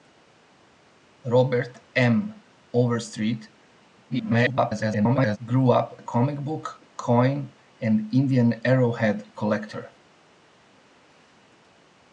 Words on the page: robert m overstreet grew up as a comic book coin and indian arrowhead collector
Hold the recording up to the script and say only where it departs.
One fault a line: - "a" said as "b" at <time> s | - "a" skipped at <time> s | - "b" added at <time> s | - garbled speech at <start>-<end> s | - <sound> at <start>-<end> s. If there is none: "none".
- garbled speech at 4.1-5.4 s
- "as" skipped at 6.0 s